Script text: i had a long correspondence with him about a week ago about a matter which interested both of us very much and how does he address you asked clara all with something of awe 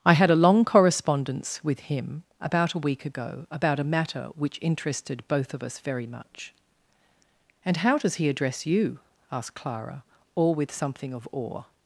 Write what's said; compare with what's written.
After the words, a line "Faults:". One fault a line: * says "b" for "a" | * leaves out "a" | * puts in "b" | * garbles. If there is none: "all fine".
i had a long correspondence with him about a week ago about a matter which interested both of us very much and how does he address you asked clara all with something of awe
Faults:
all fine